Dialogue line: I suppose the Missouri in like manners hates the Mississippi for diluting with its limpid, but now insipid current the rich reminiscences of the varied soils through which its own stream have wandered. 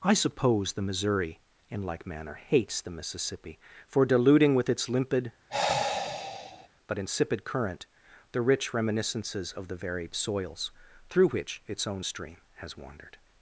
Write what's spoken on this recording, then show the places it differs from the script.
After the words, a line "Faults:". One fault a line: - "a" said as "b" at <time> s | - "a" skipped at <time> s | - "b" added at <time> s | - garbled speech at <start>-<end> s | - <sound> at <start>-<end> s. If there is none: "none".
I suppose the Missouri in like manner hates the Mississippi for diluting with its limpid, but insipid current the rich reminiscences of the varied soils through which its own stream has wandered.
Faults:
- "manners" said as "manner" at 2.1 s
- sigh at 5.5-6.7 s
- "now" skipped at 7.0 s
- "have" said as "has" at 12.6 s